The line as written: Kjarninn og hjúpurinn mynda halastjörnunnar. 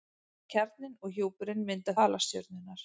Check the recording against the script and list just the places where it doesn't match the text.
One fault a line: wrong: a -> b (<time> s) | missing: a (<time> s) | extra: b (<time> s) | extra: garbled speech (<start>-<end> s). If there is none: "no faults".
no faults